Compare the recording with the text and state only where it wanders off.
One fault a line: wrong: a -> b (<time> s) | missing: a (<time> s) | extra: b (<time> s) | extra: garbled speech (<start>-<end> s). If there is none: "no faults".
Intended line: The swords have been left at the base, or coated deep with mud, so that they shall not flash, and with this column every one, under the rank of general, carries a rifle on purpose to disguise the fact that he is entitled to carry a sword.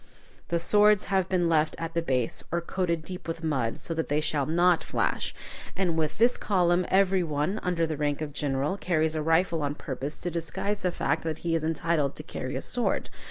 no faults